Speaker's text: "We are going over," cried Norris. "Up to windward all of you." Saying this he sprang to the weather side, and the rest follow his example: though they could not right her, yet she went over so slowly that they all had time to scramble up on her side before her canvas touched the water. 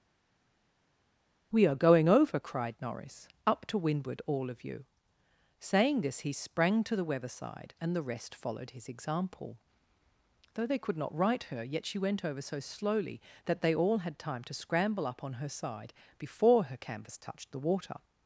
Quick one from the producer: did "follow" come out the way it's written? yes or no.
no